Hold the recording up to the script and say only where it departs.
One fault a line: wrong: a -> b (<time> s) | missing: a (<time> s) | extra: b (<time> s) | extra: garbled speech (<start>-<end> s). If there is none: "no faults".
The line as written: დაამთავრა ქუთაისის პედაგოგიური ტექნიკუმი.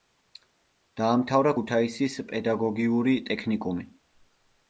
no faults